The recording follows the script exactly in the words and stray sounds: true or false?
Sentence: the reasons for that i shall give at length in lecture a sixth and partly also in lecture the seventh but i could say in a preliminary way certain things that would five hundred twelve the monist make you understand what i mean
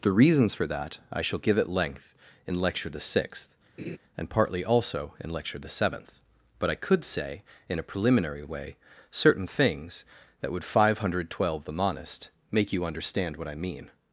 false